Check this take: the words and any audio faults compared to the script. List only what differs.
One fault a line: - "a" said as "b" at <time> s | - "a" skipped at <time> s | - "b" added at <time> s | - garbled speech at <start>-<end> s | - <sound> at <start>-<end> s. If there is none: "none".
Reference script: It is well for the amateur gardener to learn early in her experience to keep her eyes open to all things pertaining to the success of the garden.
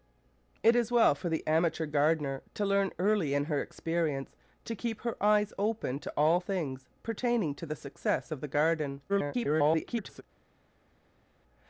- garbled speech at 9.1-10.2 s